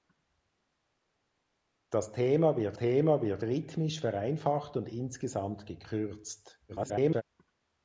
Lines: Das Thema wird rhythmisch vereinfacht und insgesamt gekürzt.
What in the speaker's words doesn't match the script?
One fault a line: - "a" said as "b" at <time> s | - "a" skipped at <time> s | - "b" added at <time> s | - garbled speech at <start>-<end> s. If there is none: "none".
- "Thema wird" added at 2.8 s
- garbled speech at 6.7-7.2 s